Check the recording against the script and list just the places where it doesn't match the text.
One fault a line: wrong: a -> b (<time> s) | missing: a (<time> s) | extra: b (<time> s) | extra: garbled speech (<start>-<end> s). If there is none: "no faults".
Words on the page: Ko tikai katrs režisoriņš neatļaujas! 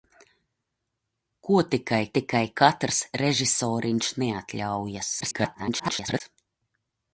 extra: tikai (2.2 s)
extra: garbled speech (5.2-6.2 s)